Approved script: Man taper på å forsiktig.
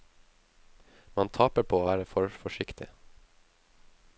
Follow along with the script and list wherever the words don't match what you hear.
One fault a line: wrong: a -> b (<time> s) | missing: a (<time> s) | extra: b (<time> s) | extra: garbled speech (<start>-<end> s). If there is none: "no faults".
extra: være for (1.9 s)